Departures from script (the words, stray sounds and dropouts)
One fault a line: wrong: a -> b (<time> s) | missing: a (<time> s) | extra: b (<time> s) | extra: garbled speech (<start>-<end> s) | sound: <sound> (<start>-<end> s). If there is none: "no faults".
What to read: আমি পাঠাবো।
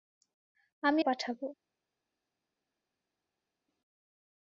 no faults